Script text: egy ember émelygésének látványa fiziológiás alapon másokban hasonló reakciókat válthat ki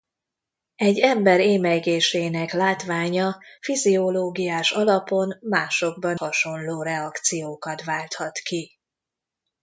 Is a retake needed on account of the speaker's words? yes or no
no